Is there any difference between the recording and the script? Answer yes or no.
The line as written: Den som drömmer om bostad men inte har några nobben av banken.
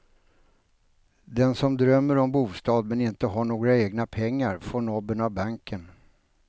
yes